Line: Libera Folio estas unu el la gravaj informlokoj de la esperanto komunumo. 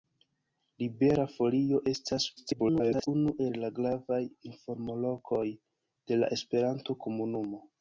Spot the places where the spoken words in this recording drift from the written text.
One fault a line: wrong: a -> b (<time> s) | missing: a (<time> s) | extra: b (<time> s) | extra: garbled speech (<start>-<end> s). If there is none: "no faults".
extra: garbled speech (2.4-3.1 s)